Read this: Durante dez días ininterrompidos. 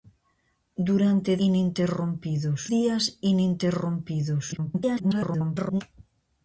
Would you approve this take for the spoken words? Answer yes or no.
no